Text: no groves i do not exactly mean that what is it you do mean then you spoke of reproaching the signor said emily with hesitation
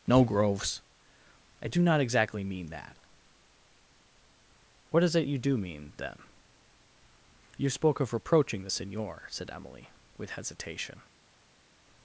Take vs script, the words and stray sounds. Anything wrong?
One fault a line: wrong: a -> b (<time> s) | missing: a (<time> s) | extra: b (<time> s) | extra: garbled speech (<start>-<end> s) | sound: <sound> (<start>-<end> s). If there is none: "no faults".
no faults